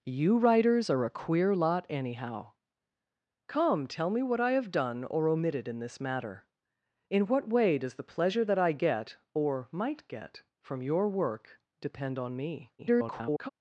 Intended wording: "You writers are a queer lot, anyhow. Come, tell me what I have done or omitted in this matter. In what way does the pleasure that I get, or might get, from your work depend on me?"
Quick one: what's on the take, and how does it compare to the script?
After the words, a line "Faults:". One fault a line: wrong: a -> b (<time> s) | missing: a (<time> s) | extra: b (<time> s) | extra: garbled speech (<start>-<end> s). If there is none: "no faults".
"You writers are a queer lot, anyhow. Come, tell me what I have done or omitted in this matter. In what way does the pleasure that I get, or might get, from your work depend on me?" [garbled]
Faults:
extra: garbled speech (12.8-13.5 s)